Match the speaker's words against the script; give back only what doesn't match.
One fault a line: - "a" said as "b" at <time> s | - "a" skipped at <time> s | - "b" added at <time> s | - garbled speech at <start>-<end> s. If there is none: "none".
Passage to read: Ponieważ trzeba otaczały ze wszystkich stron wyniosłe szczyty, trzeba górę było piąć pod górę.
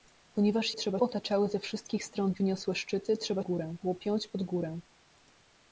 none